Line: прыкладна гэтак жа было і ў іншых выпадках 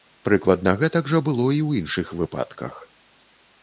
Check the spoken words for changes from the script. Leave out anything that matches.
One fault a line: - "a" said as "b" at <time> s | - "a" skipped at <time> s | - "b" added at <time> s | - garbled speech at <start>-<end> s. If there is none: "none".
none